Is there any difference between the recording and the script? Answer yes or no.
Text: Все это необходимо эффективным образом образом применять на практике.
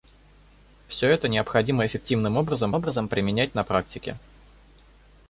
no